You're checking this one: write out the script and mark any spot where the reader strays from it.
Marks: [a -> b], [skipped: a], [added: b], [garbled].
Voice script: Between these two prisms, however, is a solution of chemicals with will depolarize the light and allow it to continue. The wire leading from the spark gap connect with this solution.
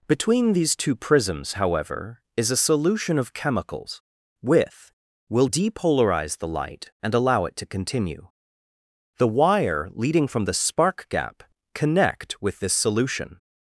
Between these two prisms, however, is a solution of chemicals with will depolarize the light and allow it to continue. The wire leading from the spark gap connect with this solution.